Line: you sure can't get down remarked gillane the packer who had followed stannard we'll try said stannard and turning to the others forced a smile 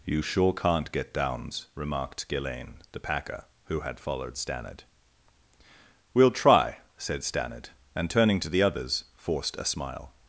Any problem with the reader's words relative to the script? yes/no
yes